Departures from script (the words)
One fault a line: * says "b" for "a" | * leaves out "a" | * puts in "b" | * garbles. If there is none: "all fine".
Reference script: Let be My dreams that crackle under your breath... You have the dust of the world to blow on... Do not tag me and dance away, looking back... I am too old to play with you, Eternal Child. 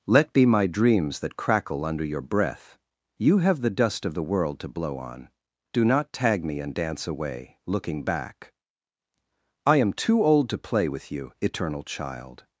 all fine